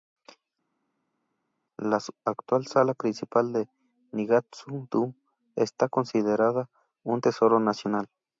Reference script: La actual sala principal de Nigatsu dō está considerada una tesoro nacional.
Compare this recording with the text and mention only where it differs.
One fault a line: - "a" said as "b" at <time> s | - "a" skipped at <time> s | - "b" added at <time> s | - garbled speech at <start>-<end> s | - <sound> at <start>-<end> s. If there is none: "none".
- "una" said as "un" at 7.0 s